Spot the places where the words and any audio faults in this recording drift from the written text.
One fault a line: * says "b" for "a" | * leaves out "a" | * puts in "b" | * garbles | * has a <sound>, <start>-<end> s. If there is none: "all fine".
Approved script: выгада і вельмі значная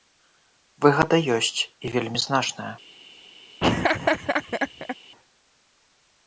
* puts in "ёсць"
* has a laugh, 3.6-5.0 s